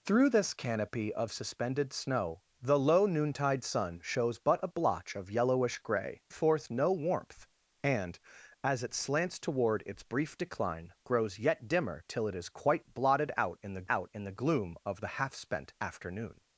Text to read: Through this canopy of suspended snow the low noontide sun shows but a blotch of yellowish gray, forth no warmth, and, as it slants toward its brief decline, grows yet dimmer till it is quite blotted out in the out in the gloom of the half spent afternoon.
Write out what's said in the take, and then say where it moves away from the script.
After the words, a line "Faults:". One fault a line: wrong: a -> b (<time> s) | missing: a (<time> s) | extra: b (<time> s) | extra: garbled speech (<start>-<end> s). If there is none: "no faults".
Through this canopy of suspended snow the low noontide sun shows but a blotch of yellowish gray, forth no warmth, and, as it slants toward its brief decline, grows yet dimmer till it is quite blotted out in the out in the gloom of the half spent afternoon.
Faults:
no faults